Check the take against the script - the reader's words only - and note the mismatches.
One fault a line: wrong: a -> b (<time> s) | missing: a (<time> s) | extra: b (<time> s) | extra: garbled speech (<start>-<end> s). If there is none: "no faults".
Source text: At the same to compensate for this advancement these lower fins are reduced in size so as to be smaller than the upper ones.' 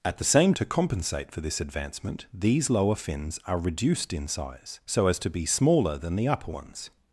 no faults